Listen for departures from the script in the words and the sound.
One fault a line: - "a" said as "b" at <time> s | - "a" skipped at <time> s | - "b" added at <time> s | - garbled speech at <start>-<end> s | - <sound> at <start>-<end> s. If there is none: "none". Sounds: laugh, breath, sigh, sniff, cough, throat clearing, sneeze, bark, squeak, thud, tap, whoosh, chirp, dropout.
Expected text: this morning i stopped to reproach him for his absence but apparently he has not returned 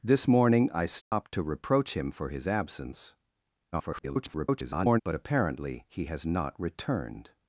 - dropout at 1.0-1.1 s
- garbled speech at 3.7-5.0 s